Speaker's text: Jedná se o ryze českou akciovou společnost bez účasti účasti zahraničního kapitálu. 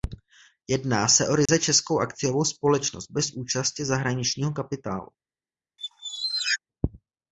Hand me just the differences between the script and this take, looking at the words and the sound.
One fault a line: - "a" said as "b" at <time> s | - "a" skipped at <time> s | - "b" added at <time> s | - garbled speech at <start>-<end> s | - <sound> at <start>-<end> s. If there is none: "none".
- dropout at 1.5-1.5 s
- "účasti" skipped at 3.9 s
- squeak at 5.8-6.6 s